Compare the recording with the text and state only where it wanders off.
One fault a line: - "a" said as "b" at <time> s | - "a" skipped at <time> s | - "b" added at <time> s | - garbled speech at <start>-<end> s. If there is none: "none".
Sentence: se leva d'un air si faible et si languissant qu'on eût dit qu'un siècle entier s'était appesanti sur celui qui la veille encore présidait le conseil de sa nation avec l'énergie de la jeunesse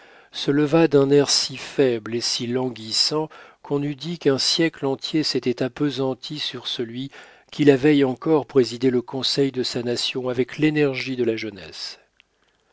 none